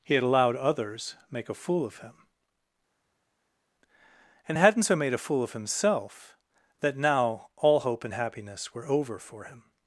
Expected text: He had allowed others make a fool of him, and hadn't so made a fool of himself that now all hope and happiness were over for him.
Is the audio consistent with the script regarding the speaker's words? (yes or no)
yes